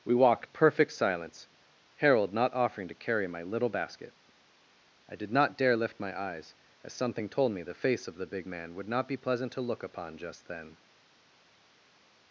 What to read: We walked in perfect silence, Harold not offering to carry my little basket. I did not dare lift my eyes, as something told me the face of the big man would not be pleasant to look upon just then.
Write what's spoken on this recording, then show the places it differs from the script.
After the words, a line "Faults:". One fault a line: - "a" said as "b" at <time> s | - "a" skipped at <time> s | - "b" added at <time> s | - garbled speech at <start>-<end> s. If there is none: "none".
We walked perfect silence, Harold not offering to carry my little basket. I did not dare lift my eyes, as something told me the face of the big man would not be pleasant to look upon just then.
Faults:
- "in" skipped at 0.5 s